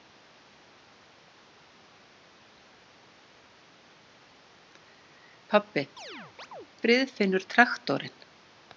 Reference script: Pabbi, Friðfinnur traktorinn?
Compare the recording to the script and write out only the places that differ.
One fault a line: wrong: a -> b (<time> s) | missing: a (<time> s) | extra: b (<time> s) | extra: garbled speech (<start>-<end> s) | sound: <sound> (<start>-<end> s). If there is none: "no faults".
sound: chirp (6.0-6.7 s)